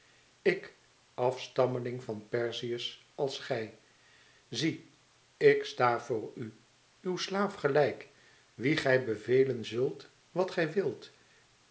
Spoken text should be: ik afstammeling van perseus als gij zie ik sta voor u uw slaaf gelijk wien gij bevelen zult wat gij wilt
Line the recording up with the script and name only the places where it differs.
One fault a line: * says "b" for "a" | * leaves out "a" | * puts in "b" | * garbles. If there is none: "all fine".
all fine